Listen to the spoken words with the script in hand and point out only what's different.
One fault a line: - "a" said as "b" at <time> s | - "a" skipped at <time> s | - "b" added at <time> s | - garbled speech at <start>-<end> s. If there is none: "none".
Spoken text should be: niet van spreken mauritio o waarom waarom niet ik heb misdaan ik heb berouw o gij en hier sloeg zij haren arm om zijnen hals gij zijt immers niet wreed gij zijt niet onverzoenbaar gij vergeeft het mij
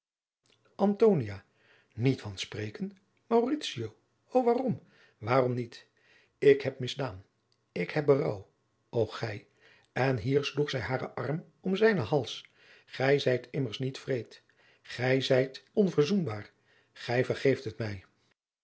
- "niet" skipped at 15.6 s